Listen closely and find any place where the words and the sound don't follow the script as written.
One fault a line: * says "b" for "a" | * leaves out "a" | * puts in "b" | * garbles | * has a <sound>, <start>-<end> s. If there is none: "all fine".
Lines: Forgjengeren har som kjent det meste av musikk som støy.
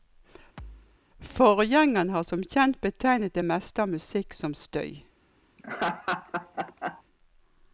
* has a thud, 0.6-1.0 s
* puts in "betegnet"
* has a laugh, 5.6-7.0 s